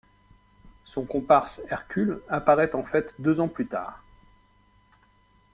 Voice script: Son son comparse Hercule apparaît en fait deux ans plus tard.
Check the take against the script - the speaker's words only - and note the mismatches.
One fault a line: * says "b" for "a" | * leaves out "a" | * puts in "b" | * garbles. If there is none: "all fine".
* leaves out "son"